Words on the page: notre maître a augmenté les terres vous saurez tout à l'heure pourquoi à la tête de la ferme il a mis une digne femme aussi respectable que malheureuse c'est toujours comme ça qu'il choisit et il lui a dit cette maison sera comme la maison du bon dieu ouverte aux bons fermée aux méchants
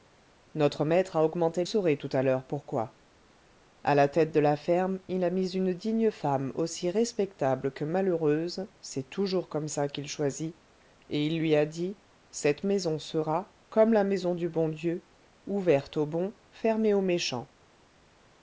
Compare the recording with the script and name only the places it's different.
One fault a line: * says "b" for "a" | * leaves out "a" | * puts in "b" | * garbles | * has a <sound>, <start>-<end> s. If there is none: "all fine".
* leaves out "les terres vous"